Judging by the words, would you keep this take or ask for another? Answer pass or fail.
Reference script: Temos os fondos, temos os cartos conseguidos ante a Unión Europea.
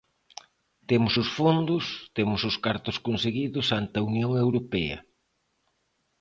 pass